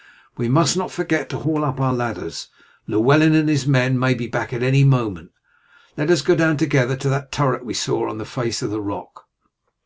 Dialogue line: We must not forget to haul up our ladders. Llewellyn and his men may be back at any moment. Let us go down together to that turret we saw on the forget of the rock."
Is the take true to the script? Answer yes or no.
no